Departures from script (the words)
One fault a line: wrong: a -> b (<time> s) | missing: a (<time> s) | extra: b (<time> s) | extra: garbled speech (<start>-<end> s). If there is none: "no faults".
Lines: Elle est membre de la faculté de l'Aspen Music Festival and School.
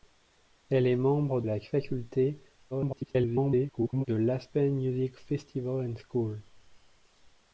missing: de (1.4 s)
extra: garbled speech (2.7-4.1 s)